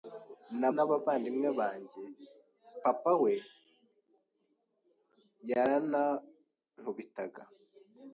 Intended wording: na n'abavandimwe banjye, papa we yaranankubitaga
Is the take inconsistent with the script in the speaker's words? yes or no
no